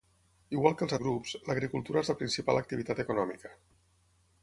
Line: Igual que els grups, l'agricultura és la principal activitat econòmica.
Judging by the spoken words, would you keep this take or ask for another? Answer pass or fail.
pass